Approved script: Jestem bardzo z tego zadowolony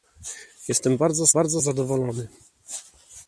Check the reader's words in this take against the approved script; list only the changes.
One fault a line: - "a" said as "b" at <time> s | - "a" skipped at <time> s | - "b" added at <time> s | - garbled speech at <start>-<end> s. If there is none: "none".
- "tego" said as "bardzo" at 1.3 s